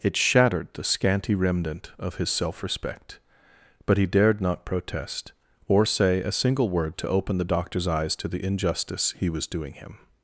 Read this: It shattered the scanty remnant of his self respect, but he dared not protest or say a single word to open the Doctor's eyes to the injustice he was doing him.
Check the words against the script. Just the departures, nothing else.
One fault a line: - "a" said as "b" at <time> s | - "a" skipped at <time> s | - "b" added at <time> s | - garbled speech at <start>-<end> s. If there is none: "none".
none